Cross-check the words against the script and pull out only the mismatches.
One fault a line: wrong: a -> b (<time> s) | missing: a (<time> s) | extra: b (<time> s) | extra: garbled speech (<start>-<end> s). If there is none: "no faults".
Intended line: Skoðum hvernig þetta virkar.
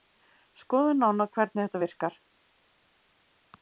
extra: nánar (1.0 s)